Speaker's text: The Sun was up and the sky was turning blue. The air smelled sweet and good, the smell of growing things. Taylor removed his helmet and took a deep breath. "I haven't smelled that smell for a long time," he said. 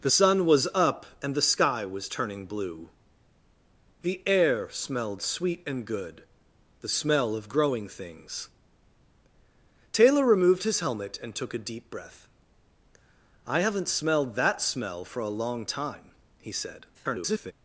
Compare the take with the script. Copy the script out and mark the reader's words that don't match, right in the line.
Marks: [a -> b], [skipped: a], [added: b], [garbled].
The Sun was up and the sky was turning blue. The air smelled sweet and good, the smell of growing things. Taylor removed his helmet and took a deep breath. "I haven't smelled that smell for a long time," he said. [garbled]